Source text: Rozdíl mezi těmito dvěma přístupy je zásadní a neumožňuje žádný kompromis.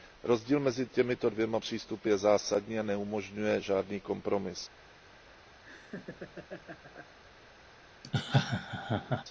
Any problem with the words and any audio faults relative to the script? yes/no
yes